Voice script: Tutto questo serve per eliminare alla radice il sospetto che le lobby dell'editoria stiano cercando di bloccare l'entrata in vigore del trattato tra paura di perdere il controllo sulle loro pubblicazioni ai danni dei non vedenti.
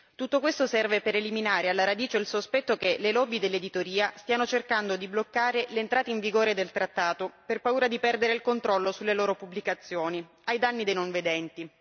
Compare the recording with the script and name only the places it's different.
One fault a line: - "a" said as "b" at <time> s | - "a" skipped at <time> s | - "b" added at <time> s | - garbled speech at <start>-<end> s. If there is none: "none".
- "tra" said as "per" at 7.5 s